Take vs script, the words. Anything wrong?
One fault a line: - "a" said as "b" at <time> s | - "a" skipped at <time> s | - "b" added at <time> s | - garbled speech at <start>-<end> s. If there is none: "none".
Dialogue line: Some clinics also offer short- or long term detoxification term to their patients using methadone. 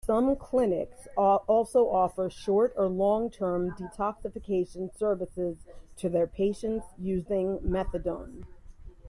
- "term" said as "services" at 5.0 s